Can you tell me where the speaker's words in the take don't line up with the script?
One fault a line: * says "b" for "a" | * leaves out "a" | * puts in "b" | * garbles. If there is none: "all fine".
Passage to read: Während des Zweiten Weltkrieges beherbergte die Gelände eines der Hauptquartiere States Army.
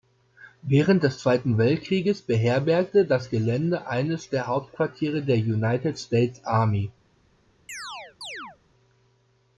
* says "das" for "die"
* puts in "der United"